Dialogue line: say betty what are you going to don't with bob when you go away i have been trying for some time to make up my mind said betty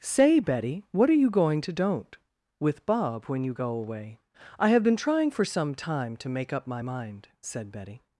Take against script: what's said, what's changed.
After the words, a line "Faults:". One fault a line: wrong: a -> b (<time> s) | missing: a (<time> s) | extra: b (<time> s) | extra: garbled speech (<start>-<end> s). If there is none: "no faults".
say betty what are you going to don't with bob when you go away i have been trying for some time to make up my mind said betty
Faults:
no faults